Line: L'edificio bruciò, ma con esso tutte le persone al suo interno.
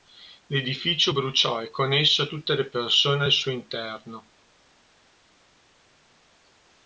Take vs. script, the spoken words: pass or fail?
fail